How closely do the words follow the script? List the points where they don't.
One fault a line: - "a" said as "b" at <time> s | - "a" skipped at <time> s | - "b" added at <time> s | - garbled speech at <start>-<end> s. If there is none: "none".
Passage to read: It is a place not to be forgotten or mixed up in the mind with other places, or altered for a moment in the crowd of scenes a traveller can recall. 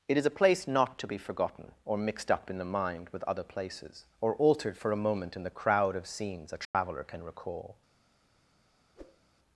none